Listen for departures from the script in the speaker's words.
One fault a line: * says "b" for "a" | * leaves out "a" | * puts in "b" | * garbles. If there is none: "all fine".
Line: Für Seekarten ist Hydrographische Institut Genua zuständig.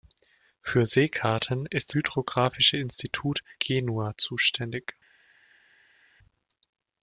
all fine